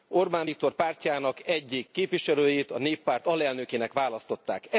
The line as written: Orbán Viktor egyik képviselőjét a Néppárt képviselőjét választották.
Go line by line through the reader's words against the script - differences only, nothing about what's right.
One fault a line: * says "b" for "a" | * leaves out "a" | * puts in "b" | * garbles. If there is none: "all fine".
* puts in "pártjának"
* says "alelnökének" for "képviselőjét"